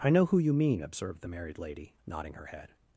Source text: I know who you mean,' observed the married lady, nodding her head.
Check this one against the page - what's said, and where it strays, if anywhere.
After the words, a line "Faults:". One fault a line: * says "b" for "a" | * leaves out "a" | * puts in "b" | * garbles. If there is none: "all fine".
I know who you mean,' observed the married lady, nodding her head.
Faults:
all fine